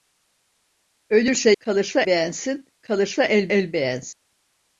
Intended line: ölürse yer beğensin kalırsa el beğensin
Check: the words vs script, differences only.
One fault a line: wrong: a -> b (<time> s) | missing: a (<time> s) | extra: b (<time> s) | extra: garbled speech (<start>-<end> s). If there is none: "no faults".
wrong: yer -> kalırsa (1.6 s)
extra: el (3.4 s)